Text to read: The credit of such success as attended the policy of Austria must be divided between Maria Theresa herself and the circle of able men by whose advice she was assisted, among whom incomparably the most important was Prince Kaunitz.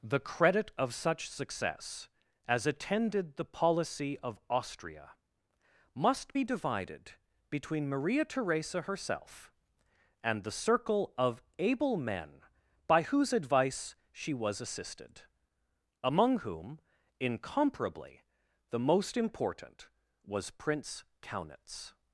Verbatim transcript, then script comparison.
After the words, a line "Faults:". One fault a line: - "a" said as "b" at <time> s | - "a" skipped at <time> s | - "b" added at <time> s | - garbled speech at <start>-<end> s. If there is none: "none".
The credit of such success as attended the policy of Austria must be divided between Maria Theresa herself and the circle of able men by whose advice she was assisted, among whom incomparably the most important was Prince Kaunitz.
Faults:
none